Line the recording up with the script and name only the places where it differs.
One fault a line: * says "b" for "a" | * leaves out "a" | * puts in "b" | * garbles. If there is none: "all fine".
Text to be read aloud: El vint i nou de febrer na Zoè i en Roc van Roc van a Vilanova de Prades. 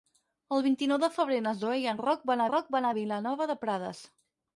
all fine